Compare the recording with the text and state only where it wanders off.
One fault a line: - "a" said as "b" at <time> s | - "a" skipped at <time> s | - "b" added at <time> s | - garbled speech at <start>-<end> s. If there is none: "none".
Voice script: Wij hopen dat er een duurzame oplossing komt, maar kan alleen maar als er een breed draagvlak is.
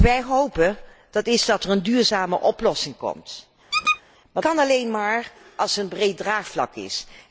none